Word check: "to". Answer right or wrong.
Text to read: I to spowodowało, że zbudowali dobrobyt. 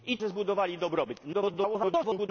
wrong